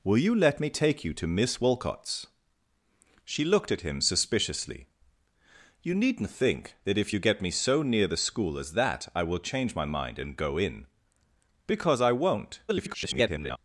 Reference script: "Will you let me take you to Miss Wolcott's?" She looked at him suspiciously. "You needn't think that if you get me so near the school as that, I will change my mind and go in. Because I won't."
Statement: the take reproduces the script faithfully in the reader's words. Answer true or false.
false